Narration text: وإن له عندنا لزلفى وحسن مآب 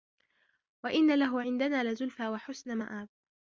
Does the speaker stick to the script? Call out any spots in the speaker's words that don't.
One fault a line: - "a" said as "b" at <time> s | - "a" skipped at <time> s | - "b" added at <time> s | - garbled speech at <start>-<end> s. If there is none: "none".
none